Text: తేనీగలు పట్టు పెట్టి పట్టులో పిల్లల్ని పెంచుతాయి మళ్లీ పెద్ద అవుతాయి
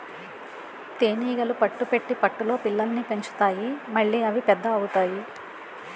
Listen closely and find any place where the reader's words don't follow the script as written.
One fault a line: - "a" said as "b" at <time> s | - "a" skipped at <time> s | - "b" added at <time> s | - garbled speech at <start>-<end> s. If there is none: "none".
- "అవి" added at 4.2 s